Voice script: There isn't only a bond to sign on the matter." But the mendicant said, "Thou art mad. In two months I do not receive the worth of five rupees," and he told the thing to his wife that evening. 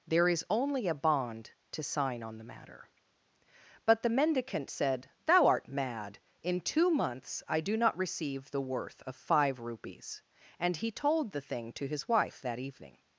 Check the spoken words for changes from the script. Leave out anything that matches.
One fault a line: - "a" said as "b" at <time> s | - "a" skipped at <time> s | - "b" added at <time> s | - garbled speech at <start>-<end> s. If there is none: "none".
- "isn't" said as "is" at 0.3 s